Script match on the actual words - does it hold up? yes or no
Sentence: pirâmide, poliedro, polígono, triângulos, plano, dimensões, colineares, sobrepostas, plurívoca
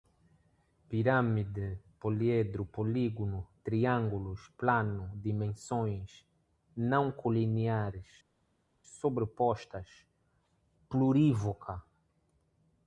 no